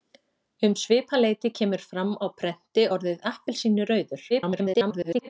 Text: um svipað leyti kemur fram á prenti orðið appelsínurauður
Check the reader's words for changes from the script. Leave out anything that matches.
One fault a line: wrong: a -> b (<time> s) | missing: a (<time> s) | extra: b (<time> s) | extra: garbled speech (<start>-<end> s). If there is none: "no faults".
extra: garbled speech (4.3-5.3 s)